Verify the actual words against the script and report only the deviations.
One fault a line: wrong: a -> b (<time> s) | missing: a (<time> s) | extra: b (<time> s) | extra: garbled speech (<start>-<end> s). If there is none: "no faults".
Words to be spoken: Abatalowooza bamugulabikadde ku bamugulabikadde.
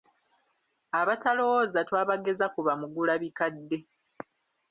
wrong: bamugulabikadde -> twabageza (1.9 s)